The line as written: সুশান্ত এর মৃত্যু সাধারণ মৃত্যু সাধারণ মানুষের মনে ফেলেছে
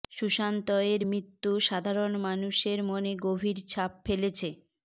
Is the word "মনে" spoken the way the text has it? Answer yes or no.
no